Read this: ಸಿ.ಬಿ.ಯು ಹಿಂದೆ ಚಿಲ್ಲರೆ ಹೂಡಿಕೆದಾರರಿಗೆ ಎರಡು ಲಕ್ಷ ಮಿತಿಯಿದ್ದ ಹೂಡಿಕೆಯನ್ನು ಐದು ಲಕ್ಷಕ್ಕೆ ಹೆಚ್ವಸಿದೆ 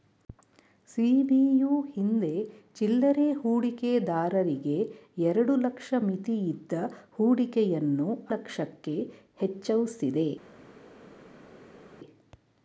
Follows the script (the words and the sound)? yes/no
no